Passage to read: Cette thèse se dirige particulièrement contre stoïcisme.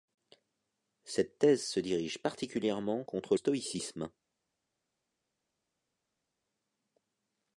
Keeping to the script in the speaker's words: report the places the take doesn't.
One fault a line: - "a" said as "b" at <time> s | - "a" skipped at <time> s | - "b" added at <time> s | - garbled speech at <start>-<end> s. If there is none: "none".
none